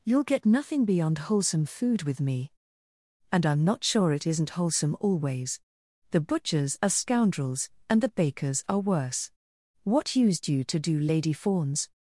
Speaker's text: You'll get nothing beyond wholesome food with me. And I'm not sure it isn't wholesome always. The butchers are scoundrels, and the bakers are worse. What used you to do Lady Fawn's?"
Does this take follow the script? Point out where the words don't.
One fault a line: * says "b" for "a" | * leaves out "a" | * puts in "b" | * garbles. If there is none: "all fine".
all fine